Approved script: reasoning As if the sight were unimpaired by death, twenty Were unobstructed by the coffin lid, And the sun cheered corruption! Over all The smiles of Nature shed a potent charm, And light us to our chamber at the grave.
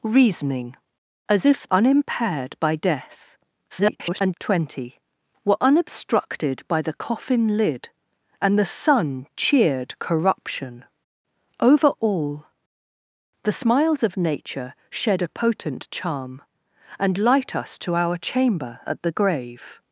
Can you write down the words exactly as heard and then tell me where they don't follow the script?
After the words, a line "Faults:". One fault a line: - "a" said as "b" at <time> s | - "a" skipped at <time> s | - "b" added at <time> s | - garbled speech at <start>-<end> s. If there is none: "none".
reasoning As if unimpaired by death, [garbled] twenty Were unobstructed by the coffin lid, And the sun cheered corruption! Over all The smiles of Nature shed a potent charm, And light us to our chamber at the grave.
Faults:
- "the sight were" skipped at 1.7 s
- garbled speech at 3.7-4.3 s